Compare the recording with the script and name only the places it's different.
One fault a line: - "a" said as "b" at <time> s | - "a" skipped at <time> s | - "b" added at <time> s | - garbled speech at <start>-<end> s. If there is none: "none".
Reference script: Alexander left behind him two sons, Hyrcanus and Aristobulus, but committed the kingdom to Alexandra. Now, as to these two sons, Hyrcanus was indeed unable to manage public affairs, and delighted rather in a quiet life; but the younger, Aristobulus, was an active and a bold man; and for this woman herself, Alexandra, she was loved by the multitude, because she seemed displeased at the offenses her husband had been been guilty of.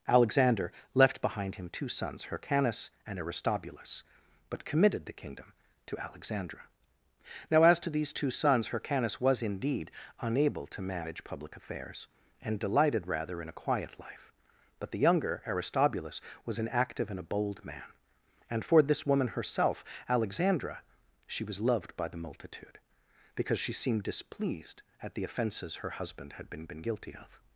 none